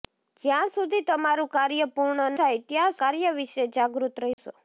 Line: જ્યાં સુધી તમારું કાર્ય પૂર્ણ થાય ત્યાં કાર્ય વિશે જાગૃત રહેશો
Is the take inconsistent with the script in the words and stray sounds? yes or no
yes